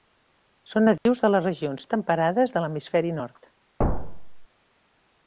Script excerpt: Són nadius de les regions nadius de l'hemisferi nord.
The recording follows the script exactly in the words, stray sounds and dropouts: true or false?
false